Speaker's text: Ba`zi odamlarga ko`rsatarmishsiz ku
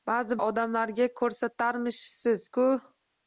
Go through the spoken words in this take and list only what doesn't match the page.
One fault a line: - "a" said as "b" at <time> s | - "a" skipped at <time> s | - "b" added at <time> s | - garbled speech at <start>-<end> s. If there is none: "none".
none